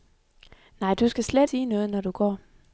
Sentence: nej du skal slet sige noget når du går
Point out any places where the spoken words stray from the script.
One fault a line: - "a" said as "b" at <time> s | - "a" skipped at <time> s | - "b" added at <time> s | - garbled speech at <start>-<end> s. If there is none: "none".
none